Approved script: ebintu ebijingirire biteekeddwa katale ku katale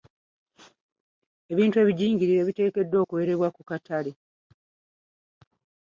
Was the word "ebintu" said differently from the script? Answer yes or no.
no